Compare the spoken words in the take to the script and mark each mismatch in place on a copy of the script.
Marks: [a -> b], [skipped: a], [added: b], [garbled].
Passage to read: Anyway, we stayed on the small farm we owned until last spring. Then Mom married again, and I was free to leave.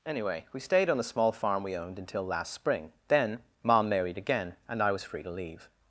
Anyway, we stayed on the small farm we owned until last spring. Then Mom married again, and I was free to leave.